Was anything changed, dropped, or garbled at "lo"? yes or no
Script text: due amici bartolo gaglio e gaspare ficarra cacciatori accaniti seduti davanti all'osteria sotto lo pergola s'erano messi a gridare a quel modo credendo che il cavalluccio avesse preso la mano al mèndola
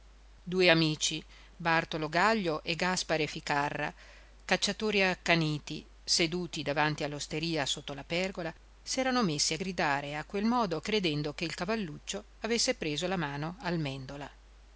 yes